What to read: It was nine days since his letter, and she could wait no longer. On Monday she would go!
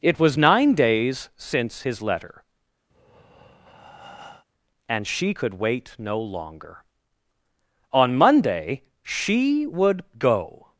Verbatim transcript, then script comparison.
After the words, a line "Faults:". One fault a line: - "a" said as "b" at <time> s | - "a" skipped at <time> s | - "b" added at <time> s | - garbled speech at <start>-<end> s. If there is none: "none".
It was nine days since his letter, and she could wait no longer. On Monday she would go!
Faults:
none